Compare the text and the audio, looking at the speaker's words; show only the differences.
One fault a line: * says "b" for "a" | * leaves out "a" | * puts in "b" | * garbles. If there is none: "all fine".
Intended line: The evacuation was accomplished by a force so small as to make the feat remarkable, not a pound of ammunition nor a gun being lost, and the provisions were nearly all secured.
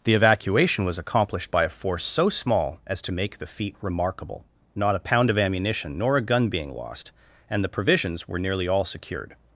all fine